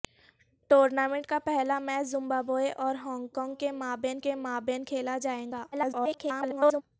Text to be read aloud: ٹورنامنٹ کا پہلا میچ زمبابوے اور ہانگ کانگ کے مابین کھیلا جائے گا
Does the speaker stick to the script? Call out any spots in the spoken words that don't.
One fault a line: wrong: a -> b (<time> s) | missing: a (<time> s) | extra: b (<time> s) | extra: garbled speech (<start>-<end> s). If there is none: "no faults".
extra: کے مابین (4.2 s)
extra: garbled speech (5.7-6.8 s)